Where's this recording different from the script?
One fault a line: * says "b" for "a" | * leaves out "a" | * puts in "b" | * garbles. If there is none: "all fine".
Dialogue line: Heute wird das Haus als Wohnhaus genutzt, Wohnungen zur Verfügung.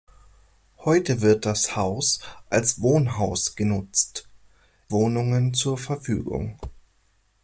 all fine